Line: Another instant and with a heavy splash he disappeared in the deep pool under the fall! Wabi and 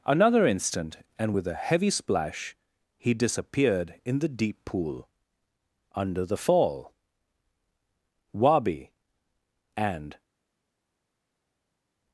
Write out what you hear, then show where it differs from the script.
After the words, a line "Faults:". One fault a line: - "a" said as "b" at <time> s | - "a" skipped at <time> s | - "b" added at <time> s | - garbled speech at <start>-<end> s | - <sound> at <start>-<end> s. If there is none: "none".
Another instant and with a heavy splash he disappeared in the deep pool under the fall! Wabi and
Faults:
none